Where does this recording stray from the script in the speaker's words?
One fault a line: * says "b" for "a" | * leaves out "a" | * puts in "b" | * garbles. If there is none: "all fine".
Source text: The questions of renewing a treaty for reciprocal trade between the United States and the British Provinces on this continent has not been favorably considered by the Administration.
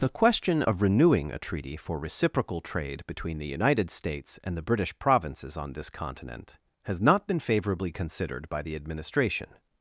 * says "question" for "questions"